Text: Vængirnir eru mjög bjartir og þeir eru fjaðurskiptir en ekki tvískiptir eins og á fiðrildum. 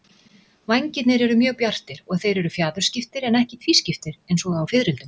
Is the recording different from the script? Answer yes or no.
no